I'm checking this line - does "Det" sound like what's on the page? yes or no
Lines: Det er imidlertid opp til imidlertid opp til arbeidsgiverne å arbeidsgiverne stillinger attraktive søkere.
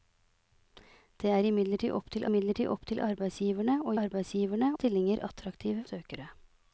yes